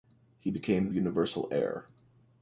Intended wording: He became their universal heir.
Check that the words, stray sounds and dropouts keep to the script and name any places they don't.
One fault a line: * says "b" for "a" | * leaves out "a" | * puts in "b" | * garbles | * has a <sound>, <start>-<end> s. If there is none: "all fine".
* leaves out "their"